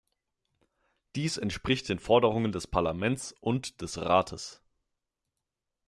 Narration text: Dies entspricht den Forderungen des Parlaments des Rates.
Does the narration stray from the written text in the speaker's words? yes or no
yes